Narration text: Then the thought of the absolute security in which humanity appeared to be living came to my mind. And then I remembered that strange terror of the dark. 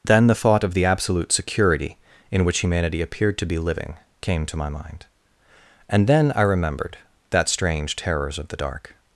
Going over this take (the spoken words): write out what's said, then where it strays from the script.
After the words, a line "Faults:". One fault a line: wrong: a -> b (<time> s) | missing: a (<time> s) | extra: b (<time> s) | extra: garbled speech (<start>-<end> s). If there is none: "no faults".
Then the thought of the absolute security in which humanity appeared to be living came to my mind. And then I remembered that strange terrors of the dark.
Faults:
wrong: terror -> terrors (8.0 s)